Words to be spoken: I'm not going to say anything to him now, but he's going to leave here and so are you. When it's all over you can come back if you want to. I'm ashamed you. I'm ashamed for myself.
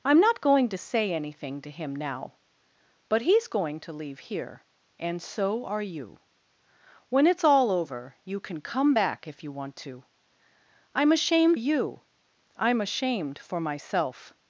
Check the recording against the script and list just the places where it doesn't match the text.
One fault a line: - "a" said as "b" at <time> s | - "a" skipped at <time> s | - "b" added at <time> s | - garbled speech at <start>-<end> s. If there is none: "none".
none